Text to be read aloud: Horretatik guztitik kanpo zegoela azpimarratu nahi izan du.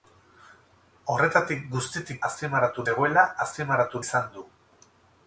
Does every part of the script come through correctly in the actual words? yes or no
no